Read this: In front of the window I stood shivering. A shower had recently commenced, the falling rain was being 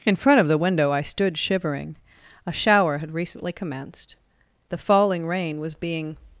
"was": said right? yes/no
yes